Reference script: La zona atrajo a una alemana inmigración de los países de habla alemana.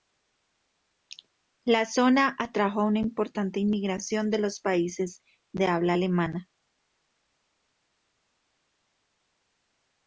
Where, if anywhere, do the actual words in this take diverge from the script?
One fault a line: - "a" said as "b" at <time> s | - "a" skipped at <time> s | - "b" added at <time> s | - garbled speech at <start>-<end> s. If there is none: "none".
- "alemana" said as "importante" at 3.0 s